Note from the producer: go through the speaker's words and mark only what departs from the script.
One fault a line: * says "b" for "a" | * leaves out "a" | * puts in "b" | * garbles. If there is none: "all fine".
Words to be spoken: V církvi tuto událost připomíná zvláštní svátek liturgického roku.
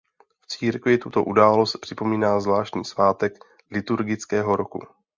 all fine